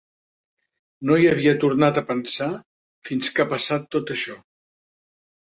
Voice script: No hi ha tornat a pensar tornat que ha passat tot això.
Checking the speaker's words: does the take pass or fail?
fail